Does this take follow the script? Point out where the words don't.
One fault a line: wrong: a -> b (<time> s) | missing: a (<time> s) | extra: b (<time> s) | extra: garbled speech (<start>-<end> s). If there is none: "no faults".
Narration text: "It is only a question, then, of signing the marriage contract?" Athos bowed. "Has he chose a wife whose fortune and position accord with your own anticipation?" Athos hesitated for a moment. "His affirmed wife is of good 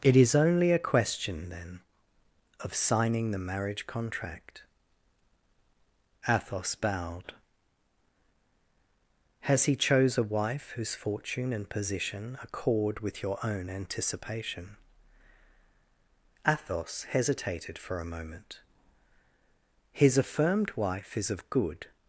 no faults